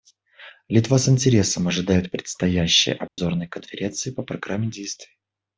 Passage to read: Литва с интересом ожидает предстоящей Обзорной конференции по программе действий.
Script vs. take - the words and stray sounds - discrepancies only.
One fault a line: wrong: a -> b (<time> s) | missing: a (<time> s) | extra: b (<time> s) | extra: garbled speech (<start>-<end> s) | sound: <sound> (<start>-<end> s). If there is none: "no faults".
sound: dropout (3.1-3.2 s)